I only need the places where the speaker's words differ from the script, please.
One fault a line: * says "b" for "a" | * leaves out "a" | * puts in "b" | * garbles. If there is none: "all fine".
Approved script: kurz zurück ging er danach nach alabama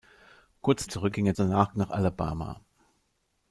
all fine